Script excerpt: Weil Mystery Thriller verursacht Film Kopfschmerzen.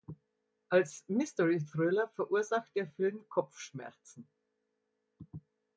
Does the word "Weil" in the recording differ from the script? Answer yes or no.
yes